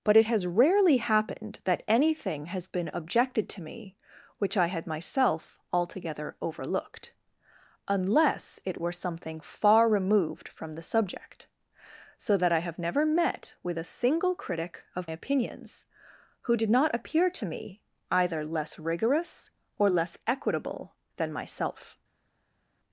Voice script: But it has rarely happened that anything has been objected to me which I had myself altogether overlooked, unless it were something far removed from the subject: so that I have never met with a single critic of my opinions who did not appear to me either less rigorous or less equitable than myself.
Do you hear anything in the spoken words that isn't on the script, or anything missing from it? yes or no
yes